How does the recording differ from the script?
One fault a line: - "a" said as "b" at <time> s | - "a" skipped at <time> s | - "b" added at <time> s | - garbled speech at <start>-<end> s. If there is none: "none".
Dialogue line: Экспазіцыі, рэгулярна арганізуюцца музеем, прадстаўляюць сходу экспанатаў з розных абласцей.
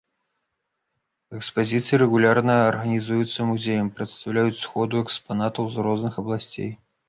none